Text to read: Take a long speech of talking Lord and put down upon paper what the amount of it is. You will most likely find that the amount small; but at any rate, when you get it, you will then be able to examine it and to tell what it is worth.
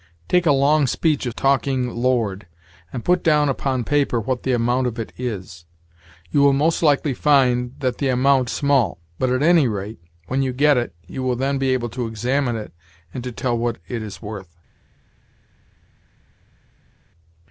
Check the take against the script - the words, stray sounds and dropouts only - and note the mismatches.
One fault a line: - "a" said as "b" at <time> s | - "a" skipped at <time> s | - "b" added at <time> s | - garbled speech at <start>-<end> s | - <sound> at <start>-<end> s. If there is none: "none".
none